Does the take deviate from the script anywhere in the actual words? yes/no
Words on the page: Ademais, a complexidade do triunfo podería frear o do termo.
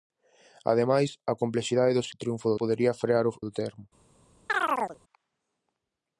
no